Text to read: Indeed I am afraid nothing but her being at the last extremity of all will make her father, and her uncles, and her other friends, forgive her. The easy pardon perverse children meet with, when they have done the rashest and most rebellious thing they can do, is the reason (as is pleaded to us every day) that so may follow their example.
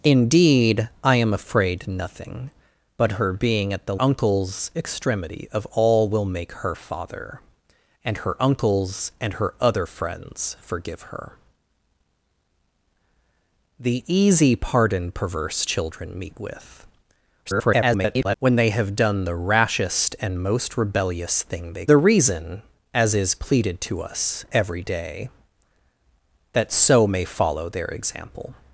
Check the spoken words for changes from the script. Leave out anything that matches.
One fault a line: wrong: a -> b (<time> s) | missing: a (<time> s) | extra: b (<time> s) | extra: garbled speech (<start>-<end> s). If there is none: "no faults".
wrong: last -> uncles (4.0 s)
extra: garbled speech (17.5-18.4 s)
missing: can do is (21.9 s)